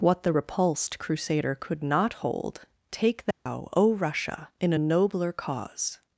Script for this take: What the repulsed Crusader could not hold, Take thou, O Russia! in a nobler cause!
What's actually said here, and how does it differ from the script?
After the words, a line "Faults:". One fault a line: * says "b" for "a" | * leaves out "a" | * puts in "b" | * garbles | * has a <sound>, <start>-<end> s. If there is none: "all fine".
What the repulsed Crusader could not hold, Take thou, O Russia! in a nobler cause!
Faults:
* has a dropout, 3.3-3.5 s